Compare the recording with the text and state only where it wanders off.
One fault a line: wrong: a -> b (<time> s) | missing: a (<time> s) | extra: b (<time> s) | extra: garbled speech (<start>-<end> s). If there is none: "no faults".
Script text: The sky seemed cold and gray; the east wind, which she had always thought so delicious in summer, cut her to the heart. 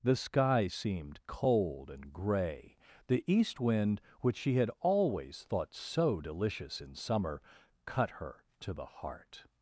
no faults